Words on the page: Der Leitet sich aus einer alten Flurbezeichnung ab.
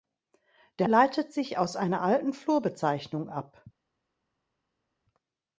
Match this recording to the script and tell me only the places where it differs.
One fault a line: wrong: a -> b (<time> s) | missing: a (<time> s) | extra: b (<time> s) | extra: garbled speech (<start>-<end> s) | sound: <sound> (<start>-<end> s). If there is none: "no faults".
no faults